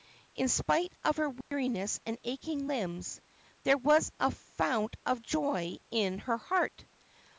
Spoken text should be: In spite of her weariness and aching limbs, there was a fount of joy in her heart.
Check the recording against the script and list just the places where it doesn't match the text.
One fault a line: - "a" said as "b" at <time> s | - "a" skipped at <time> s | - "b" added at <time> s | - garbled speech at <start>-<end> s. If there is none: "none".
none